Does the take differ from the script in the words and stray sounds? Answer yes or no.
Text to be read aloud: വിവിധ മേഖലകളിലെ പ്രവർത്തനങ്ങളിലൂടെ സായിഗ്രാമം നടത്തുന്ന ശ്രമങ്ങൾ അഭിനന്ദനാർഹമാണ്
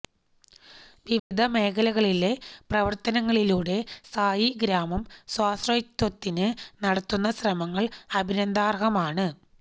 yes